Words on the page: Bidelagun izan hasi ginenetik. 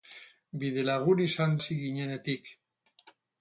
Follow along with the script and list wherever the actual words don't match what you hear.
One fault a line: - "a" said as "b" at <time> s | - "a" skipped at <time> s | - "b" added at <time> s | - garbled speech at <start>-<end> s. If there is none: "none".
none